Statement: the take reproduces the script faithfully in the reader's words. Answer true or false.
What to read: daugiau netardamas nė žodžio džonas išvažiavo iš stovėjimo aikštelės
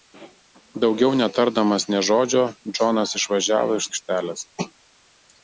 false